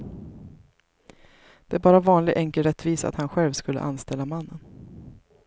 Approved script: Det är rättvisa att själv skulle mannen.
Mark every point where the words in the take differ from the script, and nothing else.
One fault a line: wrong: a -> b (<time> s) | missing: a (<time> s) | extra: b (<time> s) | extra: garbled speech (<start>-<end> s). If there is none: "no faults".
extra: bara vanlig enkel (1.8 s)
extra: han (3.1 s)
extra: anställa (3.8 s)